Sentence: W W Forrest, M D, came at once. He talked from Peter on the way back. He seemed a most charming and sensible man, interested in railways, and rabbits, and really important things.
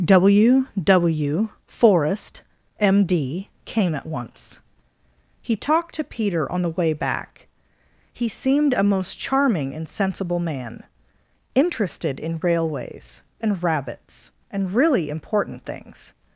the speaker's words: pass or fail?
fail